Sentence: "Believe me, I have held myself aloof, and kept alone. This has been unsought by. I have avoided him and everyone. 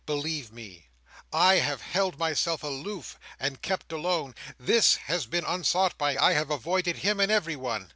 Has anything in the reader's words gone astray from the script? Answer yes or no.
no